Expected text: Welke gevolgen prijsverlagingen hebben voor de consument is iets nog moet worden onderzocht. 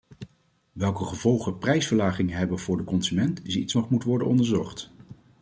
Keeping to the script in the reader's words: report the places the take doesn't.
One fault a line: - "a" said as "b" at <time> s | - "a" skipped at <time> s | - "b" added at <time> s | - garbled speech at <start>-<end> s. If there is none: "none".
none